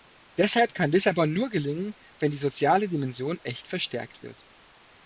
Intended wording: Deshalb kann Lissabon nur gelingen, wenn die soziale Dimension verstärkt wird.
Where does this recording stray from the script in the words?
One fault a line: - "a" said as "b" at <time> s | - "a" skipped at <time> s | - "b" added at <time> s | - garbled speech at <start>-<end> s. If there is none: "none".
- "echt" added at 3.4 s